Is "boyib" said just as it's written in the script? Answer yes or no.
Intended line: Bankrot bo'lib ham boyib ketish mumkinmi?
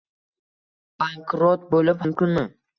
no